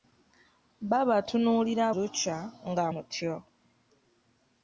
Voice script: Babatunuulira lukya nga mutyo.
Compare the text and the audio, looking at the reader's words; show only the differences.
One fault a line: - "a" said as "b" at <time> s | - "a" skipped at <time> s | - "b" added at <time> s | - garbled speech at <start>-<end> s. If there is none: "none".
none